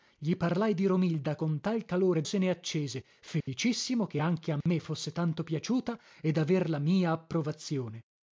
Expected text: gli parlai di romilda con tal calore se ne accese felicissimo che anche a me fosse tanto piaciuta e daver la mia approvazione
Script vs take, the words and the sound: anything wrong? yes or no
yes